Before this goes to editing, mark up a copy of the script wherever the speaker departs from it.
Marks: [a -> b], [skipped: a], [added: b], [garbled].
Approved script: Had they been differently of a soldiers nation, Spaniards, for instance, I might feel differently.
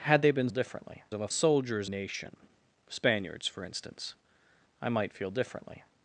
Had they been differently of a soldiers nation, Spaniards, for instance, I might feel differently.